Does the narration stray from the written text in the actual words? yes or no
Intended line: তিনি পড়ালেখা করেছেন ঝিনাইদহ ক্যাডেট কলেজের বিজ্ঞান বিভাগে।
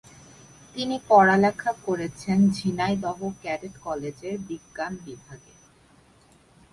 no